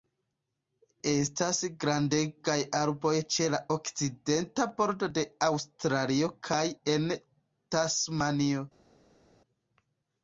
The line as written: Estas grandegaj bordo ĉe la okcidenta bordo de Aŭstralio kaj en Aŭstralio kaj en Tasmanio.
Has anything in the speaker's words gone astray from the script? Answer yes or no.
yes